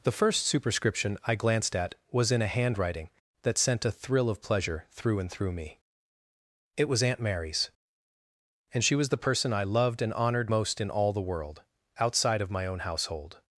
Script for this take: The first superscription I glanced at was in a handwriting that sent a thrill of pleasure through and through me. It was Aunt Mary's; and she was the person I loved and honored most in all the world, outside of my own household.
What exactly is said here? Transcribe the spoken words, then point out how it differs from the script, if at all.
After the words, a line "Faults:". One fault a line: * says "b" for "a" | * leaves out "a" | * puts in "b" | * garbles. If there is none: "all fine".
The first superscription I glanced at was in a handwriting that sent a thrill of pleasure through and through me. It was Aunt Mary's; and she was the person I loved and honored most in all the world, outside of my own household.
Faults:
all fine